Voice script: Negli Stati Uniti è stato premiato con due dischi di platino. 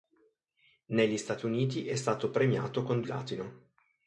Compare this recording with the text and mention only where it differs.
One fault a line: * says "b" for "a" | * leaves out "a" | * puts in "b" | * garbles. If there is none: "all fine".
* leaves out "due dischi di"